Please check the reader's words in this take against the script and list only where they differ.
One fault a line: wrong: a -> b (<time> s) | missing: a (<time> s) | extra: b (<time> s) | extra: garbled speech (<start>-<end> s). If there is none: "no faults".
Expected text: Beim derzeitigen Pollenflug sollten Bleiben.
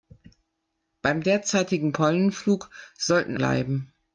no faults